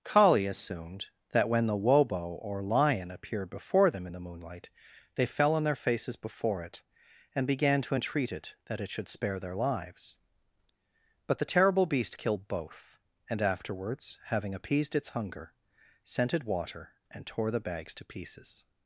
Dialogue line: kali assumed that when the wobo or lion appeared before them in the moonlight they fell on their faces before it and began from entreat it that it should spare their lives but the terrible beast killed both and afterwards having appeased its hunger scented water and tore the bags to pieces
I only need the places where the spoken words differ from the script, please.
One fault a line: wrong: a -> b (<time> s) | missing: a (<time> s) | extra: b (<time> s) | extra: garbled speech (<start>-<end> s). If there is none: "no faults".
wrong: from -> to (7.8 s)